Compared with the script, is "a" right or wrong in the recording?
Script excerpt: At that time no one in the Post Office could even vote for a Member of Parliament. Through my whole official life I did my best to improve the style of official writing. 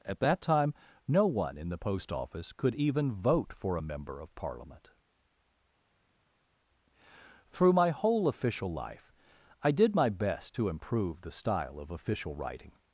right